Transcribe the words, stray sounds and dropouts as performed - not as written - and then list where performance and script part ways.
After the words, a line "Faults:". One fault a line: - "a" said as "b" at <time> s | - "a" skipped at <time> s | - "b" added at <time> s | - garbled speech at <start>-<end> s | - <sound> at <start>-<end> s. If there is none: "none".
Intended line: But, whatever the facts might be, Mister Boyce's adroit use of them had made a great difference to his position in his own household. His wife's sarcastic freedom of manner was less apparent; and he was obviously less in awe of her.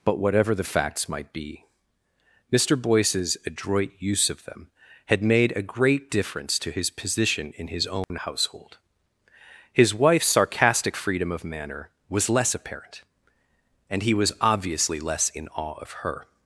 But, whatever the facts might be, Mister Boyce's adroit use of them had made a great difference to his position in his own household. His wife's sarcastic freedom of manner was less apparent; and he was obviously less in awe of her.
Faults:
- dropout at 8.0-8.1 s